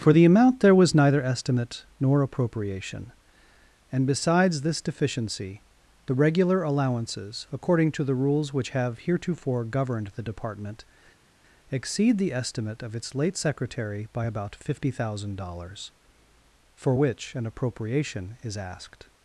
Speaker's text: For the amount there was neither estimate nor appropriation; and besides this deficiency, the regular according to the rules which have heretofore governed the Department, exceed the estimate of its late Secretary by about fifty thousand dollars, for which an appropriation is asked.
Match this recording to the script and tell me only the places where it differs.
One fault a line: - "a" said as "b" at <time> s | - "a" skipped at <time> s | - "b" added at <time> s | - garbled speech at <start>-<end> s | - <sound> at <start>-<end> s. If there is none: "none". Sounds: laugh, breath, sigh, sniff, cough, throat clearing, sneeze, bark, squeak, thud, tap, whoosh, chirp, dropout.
- "allowances" added at 6.6 s